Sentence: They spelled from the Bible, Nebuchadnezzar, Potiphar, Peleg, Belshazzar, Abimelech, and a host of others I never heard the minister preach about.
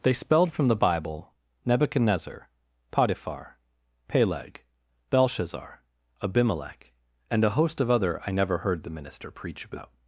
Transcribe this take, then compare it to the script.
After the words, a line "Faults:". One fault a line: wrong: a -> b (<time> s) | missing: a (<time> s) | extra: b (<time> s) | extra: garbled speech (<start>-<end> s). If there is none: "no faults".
They spelled from the Bible, Nebuchadnezzar, Potiphar, Peleg, Belshazzar, Abimelech, and a host of other I never heard the minister preach about.
Faults:
wrong: others -> other (7.9 s)